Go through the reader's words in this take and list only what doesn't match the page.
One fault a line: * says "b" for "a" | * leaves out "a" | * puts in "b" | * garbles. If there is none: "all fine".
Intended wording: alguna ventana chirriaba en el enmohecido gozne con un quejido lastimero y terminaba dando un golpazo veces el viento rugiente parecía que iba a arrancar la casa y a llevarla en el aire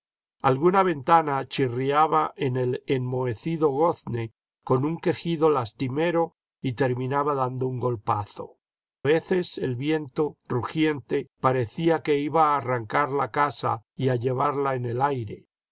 all fine